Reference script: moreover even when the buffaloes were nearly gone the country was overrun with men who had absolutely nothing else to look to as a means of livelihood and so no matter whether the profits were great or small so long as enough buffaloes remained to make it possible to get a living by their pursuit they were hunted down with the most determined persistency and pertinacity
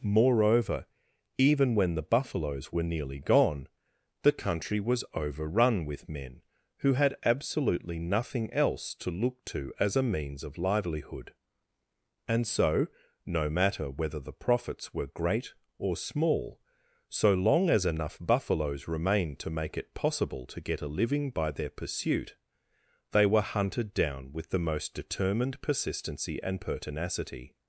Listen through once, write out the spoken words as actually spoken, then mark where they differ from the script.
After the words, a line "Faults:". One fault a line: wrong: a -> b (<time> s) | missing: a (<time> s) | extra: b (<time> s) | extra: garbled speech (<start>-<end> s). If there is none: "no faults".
moreover even when the buffaloes were nearly gone the country was overrun with men who had absolutely nothing else to look to as a means of livelihood and so no matter whether the profits were great or small so long as enough buffaloes remained to make it possible to get a living by their pursuit they were hunted down with the most determined persistency and pertinacity
Faults:
no faults